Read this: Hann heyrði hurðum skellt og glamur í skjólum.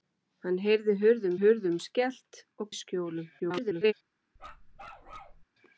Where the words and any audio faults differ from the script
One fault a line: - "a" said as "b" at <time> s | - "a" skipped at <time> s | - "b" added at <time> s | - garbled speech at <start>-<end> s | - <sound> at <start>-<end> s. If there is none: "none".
- "hurðum" added at 1.4 s
- "glamur" skipped at 2.7 s
- garbled speech at 3.4-3.9 s
- bark at 4.4-5.4 s